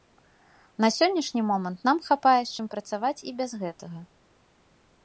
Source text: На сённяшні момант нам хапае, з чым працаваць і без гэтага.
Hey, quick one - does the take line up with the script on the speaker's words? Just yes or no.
yes